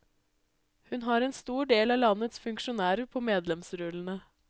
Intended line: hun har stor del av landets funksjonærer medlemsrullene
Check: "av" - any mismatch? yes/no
no